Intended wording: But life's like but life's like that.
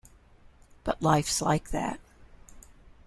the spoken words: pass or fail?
fail